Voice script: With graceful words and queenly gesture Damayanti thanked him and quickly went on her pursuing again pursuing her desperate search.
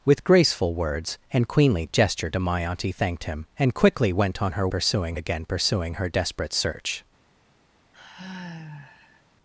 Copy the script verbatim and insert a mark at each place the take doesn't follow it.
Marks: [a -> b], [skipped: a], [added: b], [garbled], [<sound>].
With graceful words and queenly gesture Damayanti thanked him and quickly went on her pursuing again pursuing her desperate search. [sigh]